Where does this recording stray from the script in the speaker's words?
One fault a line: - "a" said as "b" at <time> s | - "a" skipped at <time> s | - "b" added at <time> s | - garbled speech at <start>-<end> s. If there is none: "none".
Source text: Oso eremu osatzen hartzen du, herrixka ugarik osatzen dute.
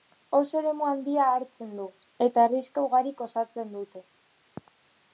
- "osatzen" said as "handia" at 0.9 s
- "eta" added at 2.3 s